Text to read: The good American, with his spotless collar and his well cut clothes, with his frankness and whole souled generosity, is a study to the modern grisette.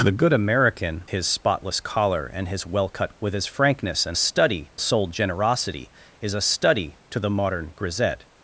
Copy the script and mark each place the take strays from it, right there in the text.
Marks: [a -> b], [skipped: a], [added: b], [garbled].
The good American, [skipped: with] his spotless collar and his well cut [skipped: clothes,] with his frankness and [whole -> study] souled generosity, is a study to the modern grisette.